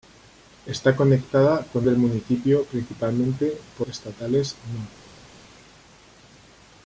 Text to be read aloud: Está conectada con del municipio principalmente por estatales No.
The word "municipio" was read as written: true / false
true